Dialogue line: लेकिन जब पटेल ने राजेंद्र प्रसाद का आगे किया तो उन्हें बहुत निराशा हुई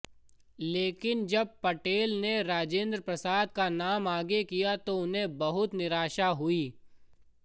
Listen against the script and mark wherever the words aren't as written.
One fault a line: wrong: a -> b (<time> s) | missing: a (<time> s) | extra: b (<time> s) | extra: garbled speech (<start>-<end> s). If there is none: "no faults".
extra: नाम (3.7 s)